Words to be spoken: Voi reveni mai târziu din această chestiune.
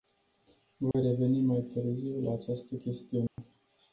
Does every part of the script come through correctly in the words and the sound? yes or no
no